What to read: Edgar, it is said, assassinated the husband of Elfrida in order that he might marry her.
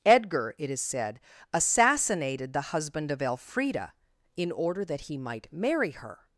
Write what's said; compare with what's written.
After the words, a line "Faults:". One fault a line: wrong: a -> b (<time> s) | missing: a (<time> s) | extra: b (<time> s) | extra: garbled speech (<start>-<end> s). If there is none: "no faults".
Edgar, it is said, assassinated the husband of Elfrida in order that he might marry her.
Faults:
no faults